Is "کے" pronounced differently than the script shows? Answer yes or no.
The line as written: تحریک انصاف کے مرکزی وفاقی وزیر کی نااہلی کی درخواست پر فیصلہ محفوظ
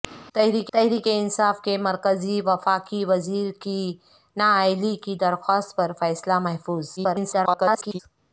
no